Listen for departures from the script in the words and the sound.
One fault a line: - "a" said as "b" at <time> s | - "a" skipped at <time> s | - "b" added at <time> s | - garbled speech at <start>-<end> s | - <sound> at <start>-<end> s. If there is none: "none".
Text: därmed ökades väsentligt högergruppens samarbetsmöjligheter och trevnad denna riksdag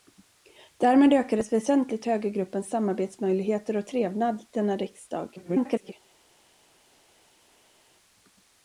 - garbled speech at 5.4-5.9 s